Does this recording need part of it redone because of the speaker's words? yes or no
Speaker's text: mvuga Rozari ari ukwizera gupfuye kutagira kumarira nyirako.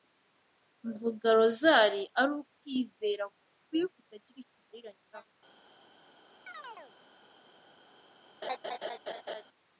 no